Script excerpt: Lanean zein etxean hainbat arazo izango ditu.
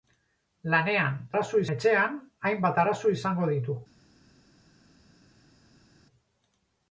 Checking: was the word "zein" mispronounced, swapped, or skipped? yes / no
yes